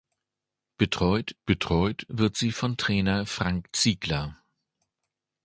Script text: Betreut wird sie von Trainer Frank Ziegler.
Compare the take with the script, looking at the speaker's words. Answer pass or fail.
fail